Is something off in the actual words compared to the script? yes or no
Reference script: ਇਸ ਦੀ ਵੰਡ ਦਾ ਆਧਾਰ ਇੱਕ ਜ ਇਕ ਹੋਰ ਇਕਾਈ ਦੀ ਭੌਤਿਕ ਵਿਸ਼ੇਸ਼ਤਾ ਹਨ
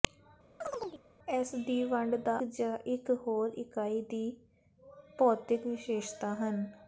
yes